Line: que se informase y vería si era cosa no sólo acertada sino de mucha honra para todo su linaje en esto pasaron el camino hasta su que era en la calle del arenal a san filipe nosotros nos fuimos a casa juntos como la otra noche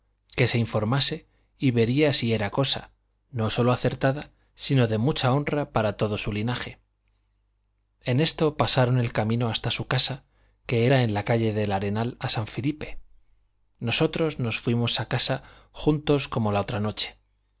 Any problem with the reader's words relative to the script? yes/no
yes